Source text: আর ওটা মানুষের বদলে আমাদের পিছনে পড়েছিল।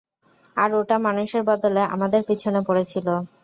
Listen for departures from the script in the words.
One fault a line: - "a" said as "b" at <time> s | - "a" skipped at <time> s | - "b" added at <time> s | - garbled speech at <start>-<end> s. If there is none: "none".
none